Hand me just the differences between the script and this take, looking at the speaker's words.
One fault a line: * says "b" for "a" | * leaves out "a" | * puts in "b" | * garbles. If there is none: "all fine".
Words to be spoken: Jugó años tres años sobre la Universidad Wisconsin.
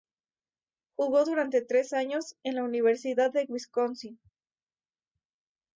* says "durante" for "años"
* says "en" for "sobre"
* puts in "de"